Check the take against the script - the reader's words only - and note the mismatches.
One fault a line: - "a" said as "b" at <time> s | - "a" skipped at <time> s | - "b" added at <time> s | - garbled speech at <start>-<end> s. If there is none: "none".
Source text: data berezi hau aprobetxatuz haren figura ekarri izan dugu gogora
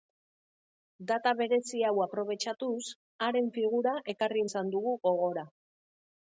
none